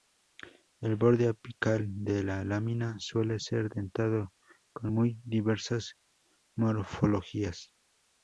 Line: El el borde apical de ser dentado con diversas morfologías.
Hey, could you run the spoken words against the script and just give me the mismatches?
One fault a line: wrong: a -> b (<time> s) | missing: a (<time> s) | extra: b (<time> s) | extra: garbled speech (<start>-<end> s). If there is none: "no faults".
missing: el (0.9 s)
extra: la lámina suele (2.2 s)
extra: muy (4.9 s)